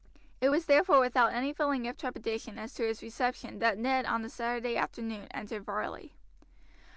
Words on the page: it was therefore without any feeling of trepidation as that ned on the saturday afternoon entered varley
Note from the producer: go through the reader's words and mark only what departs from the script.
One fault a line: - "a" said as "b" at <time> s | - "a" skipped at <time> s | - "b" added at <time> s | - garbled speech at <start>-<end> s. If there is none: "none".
- "to his reception" added at 2.7 s